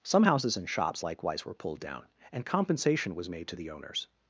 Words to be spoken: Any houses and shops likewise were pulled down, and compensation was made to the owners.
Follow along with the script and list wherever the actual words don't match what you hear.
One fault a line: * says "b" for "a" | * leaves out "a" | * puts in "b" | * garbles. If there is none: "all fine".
* says "Some" for "Any"